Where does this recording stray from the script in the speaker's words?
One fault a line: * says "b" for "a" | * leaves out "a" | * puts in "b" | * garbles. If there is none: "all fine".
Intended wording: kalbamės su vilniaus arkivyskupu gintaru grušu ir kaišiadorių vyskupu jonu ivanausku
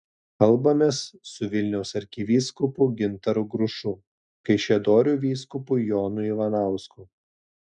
* leaves out "ir"